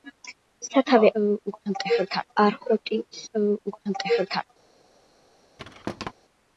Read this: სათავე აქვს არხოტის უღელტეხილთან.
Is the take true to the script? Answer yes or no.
no